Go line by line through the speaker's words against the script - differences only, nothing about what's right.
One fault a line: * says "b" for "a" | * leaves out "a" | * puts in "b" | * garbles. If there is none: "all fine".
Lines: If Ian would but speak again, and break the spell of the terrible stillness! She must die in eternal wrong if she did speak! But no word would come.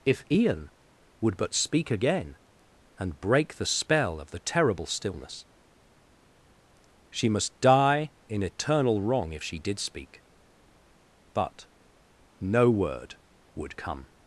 all fine